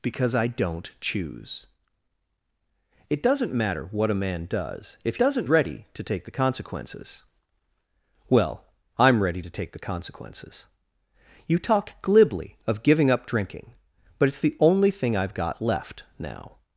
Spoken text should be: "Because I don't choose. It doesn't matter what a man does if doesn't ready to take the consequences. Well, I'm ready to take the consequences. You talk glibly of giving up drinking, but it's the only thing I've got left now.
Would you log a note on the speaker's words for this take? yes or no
no